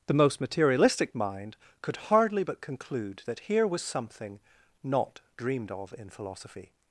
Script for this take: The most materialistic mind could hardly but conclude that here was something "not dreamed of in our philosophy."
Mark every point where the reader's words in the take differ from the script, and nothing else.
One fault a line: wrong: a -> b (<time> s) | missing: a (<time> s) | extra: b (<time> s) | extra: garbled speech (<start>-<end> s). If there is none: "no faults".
missing: our (6.1 s)